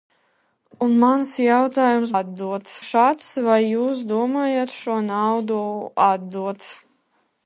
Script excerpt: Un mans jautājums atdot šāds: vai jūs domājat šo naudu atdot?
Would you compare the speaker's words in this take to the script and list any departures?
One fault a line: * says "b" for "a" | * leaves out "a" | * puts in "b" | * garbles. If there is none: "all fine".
all fine